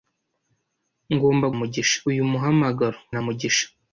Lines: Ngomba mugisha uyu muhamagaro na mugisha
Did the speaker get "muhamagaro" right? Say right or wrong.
right